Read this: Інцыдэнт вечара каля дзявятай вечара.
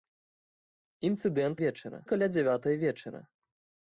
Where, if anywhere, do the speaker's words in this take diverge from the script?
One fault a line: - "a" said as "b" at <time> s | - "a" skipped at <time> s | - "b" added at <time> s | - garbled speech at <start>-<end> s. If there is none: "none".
none